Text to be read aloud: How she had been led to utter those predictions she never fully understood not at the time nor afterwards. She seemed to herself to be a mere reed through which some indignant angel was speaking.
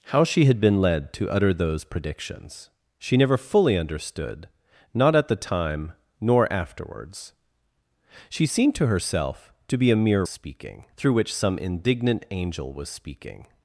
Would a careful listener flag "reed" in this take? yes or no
yes